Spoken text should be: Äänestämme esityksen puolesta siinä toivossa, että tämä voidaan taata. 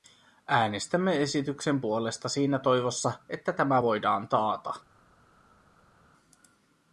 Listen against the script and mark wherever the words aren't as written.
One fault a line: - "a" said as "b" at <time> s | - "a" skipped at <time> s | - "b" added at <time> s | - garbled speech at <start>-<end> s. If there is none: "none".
none